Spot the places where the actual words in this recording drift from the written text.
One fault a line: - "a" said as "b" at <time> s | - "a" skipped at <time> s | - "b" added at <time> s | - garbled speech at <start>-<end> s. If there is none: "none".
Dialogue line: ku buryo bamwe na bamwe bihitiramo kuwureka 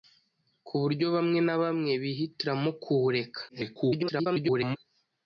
- garbled speech at 3.5-4.8 s